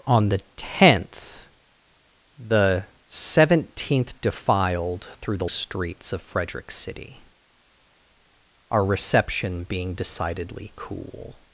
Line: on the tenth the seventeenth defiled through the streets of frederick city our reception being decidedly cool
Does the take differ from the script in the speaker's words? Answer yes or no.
no